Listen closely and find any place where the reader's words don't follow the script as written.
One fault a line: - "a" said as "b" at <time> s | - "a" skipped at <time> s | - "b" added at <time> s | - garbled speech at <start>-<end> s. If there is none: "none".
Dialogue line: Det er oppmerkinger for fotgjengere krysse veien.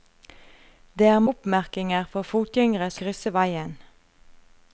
none